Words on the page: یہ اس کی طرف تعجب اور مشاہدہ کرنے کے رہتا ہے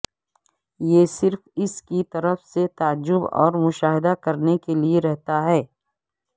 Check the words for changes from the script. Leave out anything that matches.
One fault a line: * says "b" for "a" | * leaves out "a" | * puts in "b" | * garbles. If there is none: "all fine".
* puts in "صرف"
* puts in "سے"
* puts in "لئے"